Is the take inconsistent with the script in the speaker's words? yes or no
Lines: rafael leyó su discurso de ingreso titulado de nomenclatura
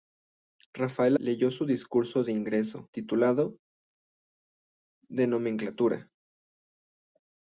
no